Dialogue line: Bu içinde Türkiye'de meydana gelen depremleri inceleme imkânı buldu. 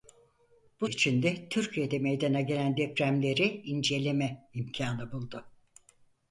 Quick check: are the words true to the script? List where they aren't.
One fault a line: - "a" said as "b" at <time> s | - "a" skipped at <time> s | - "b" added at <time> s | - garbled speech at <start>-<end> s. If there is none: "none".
none